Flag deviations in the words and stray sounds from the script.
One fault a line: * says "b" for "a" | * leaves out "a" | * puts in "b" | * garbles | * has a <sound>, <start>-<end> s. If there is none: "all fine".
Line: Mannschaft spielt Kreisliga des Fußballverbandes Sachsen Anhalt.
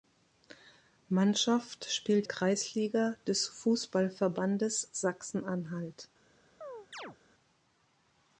* has a chirp, 6.6-7.2 s